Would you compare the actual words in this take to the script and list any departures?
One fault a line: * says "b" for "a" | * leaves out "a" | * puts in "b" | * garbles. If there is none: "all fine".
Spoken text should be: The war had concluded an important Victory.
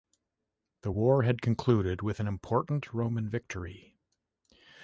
* puts in "with"
* puts in "Roman"